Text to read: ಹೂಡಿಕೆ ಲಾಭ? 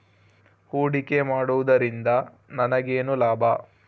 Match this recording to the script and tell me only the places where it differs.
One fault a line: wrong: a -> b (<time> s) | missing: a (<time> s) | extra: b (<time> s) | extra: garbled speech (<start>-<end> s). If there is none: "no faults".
extra: ಮಾಡುವುದರಿಂದ ನನಗೇನು (1.2 s)